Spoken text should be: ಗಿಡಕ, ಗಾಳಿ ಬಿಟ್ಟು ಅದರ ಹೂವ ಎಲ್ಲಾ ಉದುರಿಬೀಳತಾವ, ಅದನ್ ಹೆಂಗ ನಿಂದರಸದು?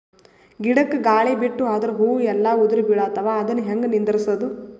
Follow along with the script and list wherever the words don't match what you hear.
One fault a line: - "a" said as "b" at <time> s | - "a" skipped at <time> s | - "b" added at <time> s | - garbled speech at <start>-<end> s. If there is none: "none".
none